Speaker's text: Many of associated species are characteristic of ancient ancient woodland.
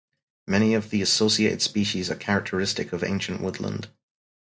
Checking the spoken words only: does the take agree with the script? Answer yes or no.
no